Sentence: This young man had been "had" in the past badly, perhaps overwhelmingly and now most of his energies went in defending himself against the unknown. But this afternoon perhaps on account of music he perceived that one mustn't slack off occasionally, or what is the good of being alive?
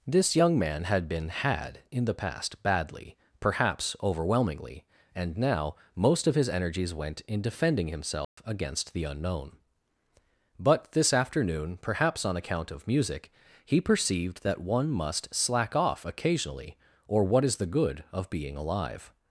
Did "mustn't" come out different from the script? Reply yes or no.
yes